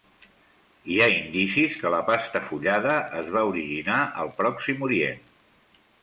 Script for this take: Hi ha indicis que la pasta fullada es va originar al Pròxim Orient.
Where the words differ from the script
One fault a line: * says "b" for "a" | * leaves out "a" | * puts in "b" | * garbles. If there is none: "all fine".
all fine